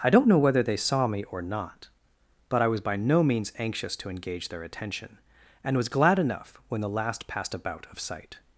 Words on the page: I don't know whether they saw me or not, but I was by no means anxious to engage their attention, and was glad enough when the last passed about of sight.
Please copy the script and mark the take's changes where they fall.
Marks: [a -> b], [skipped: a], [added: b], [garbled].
I don't know whether they saw me or not, but I was by no means anxious to engage their attention, and was glad enough when the last passed about of sight.